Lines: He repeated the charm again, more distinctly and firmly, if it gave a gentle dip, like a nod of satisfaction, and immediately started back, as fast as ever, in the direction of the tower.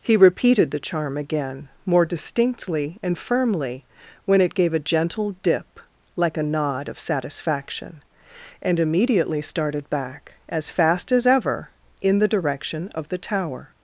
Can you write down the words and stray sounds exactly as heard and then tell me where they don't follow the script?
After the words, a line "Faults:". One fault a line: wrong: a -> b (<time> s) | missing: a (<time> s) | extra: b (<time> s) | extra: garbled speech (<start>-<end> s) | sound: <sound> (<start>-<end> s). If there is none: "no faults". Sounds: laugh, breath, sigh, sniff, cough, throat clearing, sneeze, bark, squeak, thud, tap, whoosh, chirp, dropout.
He repeated the charm again, more distinctly and firmly, when it gave a gentle dip, like a nod of satisfaction, and immediately started back, as fast as ever, in the direction of the tower.
Faults:
wrong: if -> when (4.2 s)